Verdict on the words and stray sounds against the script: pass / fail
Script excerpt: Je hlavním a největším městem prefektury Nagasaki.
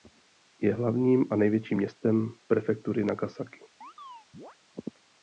fail